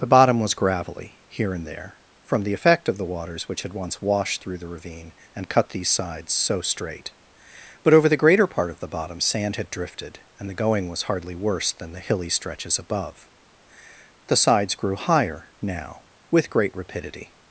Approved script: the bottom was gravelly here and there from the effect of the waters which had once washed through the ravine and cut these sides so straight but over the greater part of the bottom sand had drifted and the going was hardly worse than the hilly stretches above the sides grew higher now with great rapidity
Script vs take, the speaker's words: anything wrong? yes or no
no